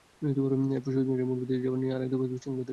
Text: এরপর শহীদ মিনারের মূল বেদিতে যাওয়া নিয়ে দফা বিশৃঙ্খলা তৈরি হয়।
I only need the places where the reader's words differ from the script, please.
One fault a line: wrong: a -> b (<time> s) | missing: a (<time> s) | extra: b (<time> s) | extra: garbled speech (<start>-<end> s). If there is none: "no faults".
extra: আরেক (1.9 s)